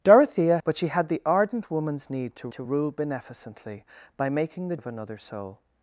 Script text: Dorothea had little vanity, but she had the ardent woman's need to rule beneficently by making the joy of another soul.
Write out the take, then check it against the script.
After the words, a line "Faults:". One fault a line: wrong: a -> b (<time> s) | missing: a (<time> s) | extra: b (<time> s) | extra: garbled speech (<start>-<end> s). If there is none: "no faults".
Dorothea but she had the ardent woman's need to to rule beneficently by making the of another soul.
Faults:
missing: had little vanity (0.6 s)
extra: to (2.5 s)
missing: joy (4.8 s)